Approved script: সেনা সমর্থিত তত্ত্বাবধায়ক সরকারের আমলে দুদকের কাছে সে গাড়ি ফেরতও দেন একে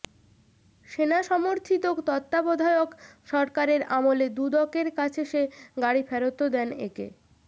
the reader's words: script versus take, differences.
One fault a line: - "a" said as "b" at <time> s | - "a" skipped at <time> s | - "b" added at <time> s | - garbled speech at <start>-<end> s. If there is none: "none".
none